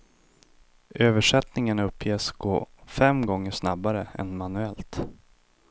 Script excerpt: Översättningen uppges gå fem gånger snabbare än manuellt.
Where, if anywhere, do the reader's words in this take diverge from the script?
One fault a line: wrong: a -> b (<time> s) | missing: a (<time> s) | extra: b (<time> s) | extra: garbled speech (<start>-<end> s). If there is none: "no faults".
no faults